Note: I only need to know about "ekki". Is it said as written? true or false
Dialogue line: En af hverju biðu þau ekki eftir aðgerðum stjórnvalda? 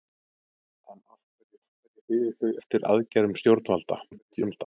false